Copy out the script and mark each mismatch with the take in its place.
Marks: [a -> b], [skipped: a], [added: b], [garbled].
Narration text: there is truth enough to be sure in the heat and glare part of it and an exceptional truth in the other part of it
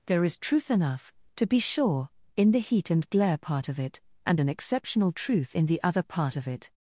there is truth enough to be sure in the heat and glare part of it and an exceptional truth in the other part of it